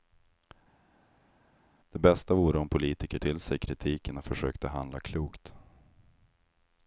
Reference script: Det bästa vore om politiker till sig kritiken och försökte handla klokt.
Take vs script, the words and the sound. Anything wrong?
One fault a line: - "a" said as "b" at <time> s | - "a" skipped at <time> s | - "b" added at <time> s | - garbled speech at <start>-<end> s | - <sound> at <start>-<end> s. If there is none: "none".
none